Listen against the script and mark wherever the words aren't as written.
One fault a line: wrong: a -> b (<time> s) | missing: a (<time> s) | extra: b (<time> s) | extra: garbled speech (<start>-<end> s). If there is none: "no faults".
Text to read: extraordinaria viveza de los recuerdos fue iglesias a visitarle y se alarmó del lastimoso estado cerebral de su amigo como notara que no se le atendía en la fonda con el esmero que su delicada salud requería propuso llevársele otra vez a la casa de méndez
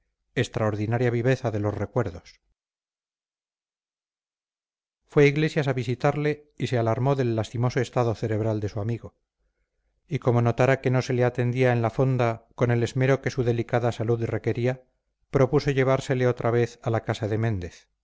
extra: y (10.1 s)